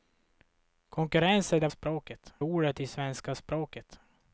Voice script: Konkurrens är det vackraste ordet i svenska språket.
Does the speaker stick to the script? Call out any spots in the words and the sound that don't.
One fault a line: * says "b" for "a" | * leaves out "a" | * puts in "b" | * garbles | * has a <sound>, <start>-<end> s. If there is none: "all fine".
* says "språket" for "vackraste"